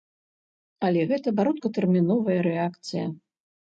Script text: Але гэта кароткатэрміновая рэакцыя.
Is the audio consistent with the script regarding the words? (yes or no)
yes